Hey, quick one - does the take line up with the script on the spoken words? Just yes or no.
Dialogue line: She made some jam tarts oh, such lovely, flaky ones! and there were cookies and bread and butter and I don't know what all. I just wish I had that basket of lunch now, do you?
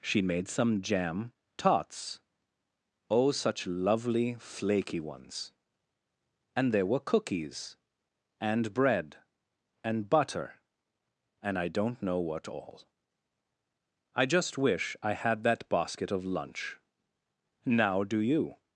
yes